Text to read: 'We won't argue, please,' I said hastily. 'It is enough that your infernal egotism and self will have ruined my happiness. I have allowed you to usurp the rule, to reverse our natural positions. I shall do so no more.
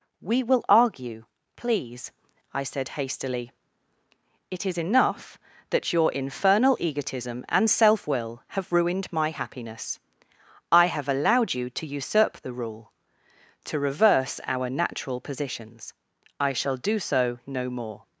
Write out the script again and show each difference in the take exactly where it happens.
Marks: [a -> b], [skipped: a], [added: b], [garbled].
'We [won't -> will] argue, please,' I said hastily. 'It is enough that your infernal egotism and self will have ruined my happiness. I have allowed you to usurp the rule, to reverse our natural positions. I shall do so no more.